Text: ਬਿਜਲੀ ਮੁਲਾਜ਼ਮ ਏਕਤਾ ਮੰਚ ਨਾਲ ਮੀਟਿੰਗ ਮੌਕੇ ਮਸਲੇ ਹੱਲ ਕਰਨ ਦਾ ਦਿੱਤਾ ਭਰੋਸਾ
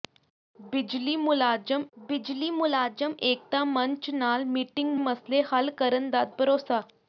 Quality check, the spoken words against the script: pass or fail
fail